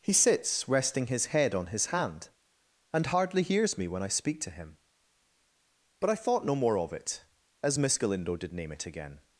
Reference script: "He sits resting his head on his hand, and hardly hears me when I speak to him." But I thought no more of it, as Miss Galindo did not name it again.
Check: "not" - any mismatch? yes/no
yes